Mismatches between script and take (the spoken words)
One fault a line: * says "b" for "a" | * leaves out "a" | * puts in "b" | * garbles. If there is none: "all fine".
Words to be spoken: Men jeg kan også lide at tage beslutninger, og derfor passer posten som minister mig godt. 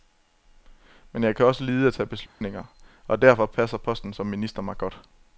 all fine